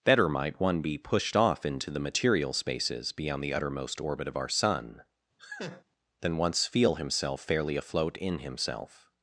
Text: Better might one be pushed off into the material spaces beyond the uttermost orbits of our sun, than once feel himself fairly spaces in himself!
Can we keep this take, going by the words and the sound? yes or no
no